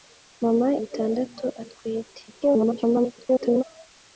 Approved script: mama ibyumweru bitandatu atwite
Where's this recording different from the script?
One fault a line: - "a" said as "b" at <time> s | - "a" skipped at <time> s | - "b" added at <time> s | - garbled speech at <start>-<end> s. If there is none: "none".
- "ibyumweru" skipped at 0.7 s
- garbled speech at 2.3-3.6 s